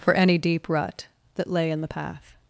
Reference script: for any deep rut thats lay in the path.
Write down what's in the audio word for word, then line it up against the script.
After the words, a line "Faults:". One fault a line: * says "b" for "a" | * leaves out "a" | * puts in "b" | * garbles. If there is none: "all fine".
for any deep rut that lay in the path.
Faults:
* says "that" for "thats"